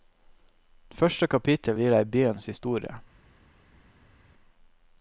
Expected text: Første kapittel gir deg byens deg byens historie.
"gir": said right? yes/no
yes